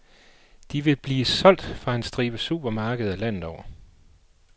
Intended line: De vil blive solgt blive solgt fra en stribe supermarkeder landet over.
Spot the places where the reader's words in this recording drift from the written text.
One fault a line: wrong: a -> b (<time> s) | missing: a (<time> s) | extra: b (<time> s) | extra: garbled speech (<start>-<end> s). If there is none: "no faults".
missing: blive solgt (1.6 s)